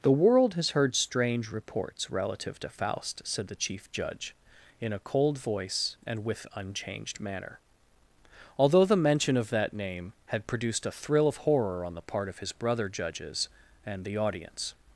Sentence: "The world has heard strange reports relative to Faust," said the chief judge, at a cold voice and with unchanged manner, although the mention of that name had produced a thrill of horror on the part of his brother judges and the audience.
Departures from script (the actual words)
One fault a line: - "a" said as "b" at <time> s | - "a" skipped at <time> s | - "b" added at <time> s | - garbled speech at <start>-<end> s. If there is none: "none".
- "at" said as "in" at 4.8 s